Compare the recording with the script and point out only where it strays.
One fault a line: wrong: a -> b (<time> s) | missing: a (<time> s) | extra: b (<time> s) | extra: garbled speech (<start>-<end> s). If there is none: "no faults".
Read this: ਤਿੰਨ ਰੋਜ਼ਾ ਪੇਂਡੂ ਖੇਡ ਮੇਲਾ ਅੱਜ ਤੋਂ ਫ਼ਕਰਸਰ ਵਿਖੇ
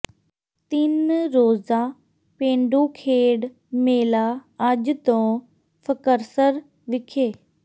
no faults